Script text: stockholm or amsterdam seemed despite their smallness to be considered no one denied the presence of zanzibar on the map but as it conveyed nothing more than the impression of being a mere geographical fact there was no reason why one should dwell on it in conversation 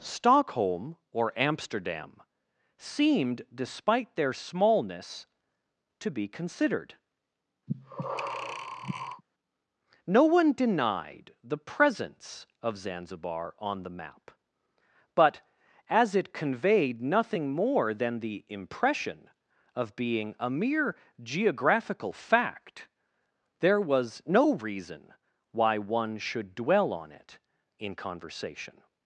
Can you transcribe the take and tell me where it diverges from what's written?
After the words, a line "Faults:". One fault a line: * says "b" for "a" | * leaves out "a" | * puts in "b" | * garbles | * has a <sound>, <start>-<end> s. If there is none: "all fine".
stockholm or amsterdam seemed despite their smallness to be considered no one denied the presence of zanzibar on the map but as it conveyed nothing more than the impression of being a mere geographical fact there was no reason why one should dwell on it in conversation
Faults:
* has a breath, 7.7-9.2 s